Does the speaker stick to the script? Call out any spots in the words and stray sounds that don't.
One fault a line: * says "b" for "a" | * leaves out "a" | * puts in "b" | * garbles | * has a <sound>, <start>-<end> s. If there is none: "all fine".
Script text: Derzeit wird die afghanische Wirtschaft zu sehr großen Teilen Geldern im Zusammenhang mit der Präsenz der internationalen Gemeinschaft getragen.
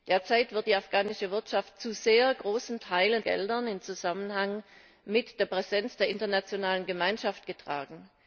all fine